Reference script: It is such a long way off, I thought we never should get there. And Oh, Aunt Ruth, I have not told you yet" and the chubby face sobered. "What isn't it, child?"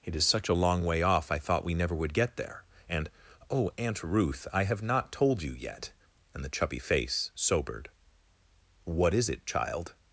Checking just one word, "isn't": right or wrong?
wrong